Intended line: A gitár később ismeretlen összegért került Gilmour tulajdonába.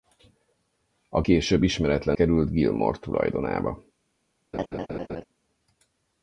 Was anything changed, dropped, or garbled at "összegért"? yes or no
yes